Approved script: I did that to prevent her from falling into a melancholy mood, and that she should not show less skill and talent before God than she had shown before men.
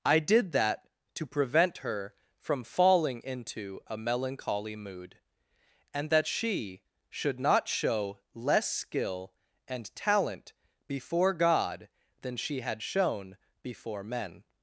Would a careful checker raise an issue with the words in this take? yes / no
no